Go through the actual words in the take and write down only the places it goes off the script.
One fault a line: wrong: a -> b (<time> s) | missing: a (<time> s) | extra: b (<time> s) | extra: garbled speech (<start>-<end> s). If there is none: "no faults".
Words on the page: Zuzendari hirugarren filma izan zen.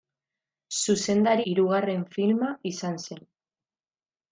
no faults